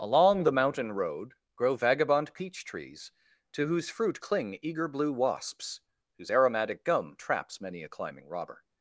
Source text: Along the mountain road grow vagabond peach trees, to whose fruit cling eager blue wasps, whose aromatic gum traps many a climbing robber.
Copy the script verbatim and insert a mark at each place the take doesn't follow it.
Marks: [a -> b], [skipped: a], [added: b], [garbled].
Along the mountain road grow vagabond peach trees, to whose fruit cling eager blue wasps, whose aromatic gum traps many a climbing robber.